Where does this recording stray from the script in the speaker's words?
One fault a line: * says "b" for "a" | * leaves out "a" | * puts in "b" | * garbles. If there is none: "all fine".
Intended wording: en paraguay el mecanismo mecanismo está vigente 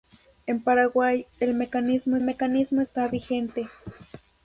all fine